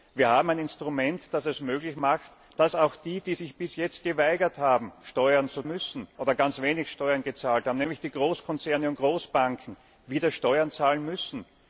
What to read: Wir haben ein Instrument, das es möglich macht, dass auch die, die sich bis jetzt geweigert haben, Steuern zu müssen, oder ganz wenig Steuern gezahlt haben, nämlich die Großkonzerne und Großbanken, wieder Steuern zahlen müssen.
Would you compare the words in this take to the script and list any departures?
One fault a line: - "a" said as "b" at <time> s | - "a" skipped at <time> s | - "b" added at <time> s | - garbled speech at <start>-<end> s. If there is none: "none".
none